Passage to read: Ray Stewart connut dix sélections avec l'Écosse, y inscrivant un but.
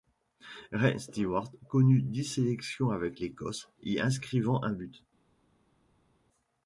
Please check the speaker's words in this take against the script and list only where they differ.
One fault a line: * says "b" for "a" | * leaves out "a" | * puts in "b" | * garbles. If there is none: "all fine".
all fine